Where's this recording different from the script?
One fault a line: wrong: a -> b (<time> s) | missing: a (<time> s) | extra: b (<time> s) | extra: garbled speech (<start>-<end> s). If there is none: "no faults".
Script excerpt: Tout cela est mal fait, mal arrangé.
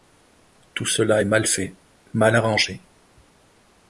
no faults